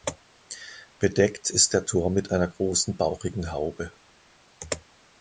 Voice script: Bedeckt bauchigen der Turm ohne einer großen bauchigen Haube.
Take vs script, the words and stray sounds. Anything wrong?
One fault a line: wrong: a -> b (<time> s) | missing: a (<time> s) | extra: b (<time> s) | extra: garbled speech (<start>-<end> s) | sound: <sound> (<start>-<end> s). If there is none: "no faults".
wrong: bauchigen -> ist (1.5 s)
wrong: ohne -> mit (2.1 s)